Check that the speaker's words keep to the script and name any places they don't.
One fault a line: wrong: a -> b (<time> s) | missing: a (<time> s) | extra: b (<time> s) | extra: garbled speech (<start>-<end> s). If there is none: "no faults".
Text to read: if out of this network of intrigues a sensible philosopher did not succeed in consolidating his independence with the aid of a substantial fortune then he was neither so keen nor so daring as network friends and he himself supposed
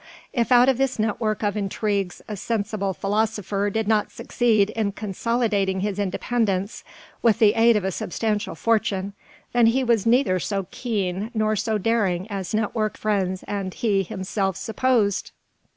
no faults